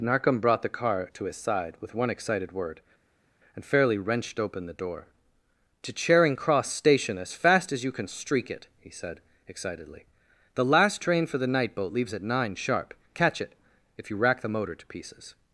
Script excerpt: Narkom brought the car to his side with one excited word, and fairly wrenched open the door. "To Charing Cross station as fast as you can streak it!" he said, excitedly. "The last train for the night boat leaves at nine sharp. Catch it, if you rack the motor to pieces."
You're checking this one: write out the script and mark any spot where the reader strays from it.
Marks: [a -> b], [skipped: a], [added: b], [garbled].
Narkom brought the car to his side with one excited word, and fairly wrenched open the door. "To Charing Cross station as fast as you can streak it!" he said, excitedly. "The last train for the night boat leaves at nine sharp. Catch it, if you rack the motor to pieces."